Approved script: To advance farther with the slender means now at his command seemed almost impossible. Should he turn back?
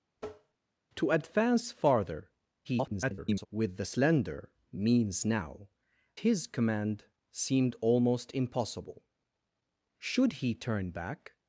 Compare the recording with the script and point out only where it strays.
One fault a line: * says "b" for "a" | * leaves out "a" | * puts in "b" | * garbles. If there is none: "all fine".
* garbles
* leaves out "at"